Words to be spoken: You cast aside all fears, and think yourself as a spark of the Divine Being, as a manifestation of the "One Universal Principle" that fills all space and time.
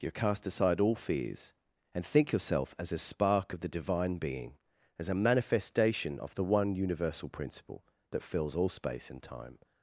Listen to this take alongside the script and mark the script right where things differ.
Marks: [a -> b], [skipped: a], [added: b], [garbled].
You cast aside all fears, and think yourself as a spark of the Divine Being, as a manifestation of the "One Universal Principle" that fills all space and time.